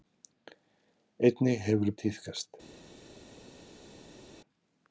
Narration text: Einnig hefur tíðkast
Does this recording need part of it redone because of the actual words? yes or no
no